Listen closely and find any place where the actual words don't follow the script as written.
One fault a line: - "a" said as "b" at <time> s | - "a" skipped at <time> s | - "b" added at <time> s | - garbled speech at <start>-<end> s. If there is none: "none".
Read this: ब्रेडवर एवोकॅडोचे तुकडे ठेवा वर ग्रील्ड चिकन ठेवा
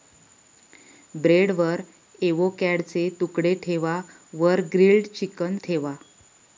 none